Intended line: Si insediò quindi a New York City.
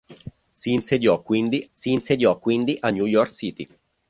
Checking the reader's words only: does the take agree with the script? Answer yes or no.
no